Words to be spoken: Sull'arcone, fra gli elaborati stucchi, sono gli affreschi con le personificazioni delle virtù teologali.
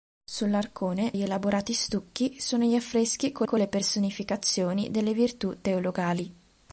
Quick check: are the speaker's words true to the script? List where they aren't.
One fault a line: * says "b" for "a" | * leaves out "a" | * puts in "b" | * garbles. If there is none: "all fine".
* leaves out "fra"
* puts in "con"